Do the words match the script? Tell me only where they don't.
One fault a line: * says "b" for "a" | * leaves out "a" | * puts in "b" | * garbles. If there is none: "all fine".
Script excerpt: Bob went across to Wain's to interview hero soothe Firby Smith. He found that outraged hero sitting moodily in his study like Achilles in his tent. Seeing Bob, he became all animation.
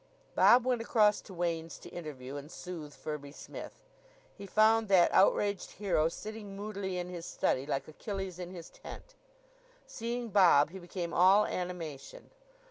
* says "and" for "hero"